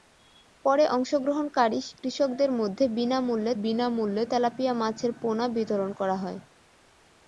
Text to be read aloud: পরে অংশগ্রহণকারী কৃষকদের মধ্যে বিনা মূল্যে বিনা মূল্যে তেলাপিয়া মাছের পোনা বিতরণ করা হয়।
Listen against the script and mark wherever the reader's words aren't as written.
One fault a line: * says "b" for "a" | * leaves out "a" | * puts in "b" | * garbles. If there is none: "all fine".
all fine